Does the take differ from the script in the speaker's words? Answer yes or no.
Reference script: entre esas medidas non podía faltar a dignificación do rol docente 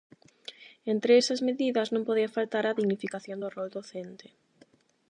no